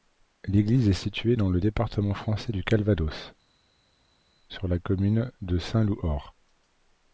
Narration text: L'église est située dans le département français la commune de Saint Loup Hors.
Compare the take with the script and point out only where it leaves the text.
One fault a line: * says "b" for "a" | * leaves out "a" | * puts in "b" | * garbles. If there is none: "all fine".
* puts in "du Calvados sur"